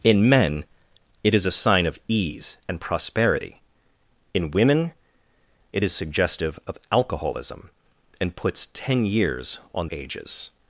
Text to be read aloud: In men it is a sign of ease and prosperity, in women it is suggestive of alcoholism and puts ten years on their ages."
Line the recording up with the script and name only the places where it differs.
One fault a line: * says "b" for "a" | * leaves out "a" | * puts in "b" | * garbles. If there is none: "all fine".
* leaves out "their"